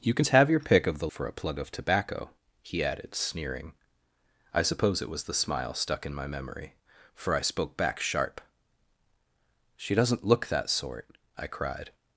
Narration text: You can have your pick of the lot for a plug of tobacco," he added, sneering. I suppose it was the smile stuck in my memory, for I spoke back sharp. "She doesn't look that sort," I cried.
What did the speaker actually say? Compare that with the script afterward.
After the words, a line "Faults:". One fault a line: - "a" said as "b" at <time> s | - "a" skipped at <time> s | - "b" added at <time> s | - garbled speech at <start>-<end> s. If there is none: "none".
You can have your pick of the for a plug of tobacco," he added, sneering. I suppose it was the smile stuck in my memory, for I spoke back sharp. "She doesn't look that sort," I cried.
Faults:
- "lot" skipped at 1.1 s